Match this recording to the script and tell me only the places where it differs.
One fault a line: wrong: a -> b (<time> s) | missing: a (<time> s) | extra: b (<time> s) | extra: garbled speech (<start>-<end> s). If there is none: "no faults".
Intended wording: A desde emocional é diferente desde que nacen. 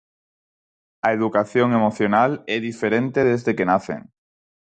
wrong: desde -> educación (1.2 s)